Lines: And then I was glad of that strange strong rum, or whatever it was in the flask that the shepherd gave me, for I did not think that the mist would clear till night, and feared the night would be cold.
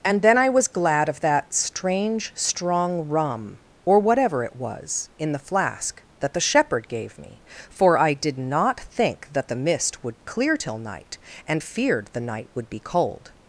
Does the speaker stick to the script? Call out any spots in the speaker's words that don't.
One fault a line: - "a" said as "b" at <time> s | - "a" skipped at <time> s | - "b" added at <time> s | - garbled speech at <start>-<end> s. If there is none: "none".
none